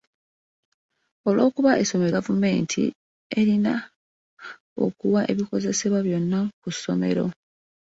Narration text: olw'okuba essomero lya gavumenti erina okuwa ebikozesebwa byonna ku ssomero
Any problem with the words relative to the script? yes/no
yes